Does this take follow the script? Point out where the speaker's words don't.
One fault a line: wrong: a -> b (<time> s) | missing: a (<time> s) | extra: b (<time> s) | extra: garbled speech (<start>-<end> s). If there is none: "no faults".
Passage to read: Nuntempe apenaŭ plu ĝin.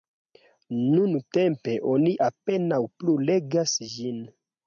extra: oni (1.9 s)
extra: legas (3.3 s)